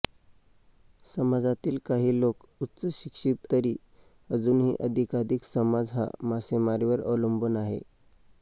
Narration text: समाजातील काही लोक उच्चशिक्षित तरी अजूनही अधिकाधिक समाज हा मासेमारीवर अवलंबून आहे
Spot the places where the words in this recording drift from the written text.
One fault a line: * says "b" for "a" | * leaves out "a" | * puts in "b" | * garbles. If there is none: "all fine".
all fine